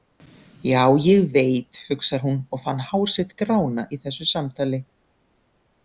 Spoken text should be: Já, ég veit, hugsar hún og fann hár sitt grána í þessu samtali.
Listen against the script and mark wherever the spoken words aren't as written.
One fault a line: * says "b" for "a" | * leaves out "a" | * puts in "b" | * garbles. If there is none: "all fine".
all fine